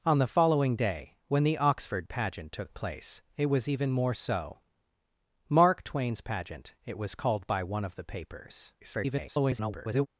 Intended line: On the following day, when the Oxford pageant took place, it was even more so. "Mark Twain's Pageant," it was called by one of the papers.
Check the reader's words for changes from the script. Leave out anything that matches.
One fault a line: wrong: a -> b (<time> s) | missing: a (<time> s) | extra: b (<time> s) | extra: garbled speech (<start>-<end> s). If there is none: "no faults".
extra: garbled speech (8.8-10.1 s)